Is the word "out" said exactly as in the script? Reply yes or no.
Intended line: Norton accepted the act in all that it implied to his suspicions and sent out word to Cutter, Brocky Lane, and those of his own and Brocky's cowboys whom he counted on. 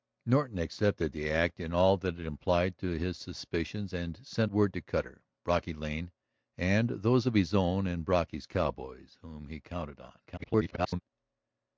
no